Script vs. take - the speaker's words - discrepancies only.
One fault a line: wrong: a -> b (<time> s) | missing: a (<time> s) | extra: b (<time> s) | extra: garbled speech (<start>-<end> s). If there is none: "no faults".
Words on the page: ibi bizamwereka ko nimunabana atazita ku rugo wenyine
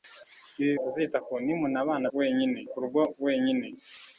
wrong: bizamwereka -> atazita (0.8 s)
wrong: atazita -> wenyine (2.2 s)